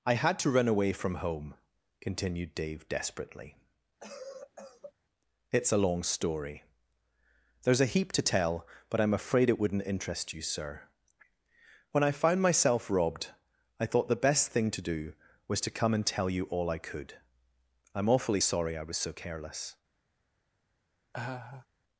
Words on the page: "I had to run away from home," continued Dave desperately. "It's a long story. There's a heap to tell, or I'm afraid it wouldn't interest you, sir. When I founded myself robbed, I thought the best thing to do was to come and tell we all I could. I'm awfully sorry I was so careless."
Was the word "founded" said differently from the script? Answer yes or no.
yes